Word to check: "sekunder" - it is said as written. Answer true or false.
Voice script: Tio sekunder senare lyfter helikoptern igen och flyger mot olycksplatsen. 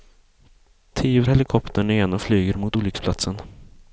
false